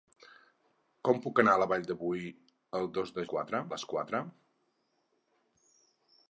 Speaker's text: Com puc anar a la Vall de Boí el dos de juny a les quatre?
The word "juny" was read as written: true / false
false